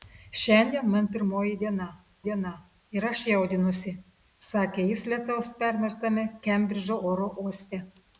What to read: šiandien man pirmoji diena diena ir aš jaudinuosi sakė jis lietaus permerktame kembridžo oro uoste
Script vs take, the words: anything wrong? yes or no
no